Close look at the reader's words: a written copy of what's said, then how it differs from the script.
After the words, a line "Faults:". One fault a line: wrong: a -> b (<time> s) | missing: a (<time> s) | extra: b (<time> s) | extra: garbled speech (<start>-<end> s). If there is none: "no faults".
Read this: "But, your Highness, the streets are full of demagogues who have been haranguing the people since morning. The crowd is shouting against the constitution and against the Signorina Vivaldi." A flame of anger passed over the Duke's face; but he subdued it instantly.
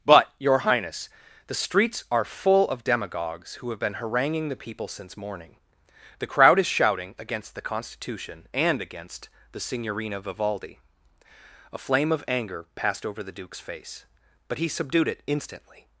"But, your Highness, the streets are full of demagogues who have been haranguing the people since morning. The crowd is shouting against the constitution and against the Signorina Vivaldi." A flame of anger passed over the Duke's face; but he subdued it instantly.
Faults:
no faults